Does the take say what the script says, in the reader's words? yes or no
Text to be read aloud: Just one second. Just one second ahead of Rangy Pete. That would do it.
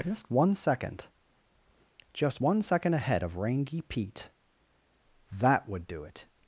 yes